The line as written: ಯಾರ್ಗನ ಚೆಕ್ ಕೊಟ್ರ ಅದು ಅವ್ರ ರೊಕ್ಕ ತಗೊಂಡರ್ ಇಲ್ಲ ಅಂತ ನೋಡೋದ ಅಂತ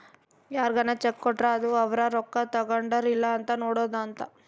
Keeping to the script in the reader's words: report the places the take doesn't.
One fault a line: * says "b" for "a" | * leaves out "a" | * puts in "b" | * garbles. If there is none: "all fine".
all fine